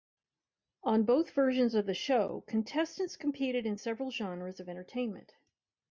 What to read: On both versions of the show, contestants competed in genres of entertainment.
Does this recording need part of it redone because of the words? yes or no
yes